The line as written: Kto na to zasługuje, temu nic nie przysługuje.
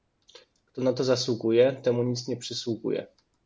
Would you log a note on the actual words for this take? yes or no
no